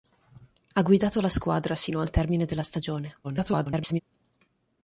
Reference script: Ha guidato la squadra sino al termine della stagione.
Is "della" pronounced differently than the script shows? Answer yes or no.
no